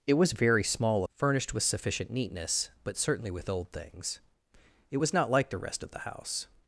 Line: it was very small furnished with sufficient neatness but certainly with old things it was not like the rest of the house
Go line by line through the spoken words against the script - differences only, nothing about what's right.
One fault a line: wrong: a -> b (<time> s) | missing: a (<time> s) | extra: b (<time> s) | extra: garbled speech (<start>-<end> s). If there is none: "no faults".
no faults